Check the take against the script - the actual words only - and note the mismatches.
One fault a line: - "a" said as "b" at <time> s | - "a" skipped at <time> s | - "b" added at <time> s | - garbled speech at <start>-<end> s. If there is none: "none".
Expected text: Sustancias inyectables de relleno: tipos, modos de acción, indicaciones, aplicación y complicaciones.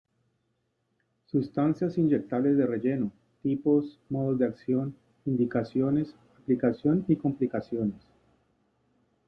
none